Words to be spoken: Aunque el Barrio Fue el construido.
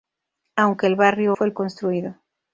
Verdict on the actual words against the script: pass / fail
pass